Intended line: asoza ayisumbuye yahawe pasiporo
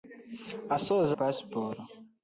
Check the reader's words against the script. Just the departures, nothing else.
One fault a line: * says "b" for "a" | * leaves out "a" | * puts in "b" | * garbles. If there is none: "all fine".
* leaves out "ayisumbuye yahawe"